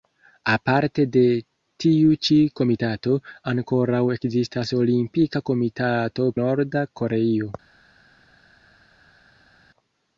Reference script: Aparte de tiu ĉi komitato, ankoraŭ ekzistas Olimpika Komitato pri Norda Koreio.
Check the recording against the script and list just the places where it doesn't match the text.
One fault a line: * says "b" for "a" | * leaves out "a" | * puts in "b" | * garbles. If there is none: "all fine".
* leaves out "pri"